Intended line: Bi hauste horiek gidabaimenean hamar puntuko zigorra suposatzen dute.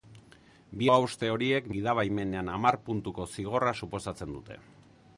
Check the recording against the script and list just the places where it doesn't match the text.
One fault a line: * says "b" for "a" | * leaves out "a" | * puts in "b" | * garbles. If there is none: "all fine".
all fine